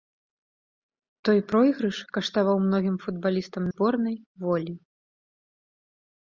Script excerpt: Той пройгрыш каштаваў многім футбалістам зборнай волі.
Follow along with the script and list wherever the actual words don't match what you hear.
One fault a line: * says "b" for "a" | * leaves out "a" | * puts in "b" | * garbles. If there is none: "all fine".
all fine